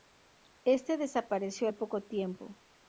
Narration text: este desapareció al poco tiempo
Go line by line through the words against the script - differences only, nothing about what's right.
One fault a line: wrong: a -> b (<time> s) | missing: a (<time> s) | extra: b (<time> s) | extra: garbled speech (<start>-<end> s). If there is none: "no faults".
no faults